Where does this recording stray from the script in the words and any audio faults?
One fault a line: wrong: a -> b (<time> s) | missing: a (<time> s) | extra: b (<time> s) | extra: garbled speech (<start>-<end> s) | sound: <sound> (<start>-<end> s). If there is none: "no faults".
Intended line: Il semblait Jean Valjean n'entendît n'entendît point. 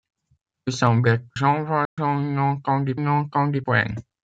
sound: dropout (1.8-2.0 s)